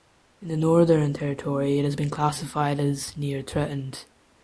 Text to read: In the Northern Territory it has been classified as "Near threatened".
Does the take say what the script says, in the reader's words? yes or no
yes